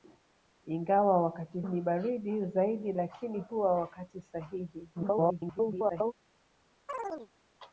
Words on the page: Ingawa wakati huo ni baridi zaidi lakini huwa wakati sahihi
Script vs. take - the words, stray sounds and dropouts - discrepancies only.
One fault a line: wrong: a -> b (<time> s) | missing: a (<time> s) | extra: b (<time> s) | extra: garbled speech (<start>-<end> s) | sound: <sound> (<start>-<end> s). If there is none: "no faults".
missing: huo (1.6 s)
extra: garbled speech (4.9-6.1 s)
sound: chirp (6.9-7.3 s)